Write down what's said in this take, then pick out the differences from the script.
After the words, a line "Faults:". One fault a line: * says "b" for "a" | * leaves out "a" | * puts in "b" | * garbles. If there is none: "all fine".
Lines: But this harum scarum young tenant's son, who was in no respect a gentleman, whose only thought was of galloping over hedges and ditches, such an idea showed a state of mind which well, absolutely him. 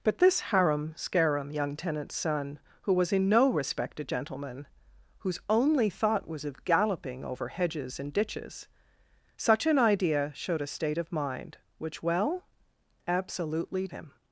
But this harum scarum young tenant's son, who was in no respect a gentleman, whose only thought was of galloping over hedges and ditches, such an idea showed a state of mind which well, absolutely him.
Faults:
all fine